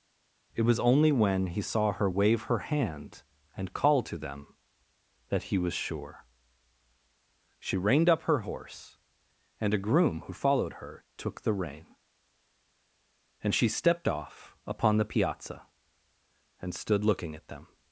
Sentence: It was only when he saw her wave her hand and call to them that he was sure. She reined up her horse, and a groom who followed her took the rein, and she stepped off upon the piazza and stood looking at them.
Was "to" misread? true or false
false